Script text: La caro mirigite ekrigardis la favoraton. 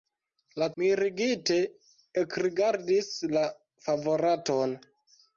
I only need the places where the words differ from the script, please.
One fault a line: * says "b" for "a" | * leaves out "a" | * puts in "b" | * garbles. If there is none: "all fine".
* leaves out "caro"